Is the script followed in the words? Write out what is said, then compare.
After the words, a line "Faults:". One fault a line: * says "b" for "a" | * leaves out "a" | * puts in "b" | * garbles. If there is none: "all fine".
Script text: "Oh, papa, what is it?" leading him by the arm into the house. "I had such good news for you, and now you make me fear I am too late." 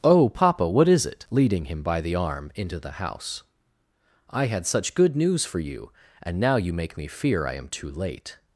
"Oh, papa, what is it?" leading him by the arm into the house. "I had such good news for you, and now you make me fear I am too late."
Faults:
all fine